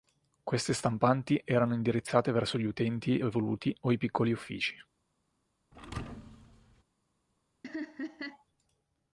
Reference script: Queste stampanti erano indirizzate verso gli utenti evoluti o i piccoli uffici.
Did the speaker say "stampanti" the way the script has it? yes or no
yes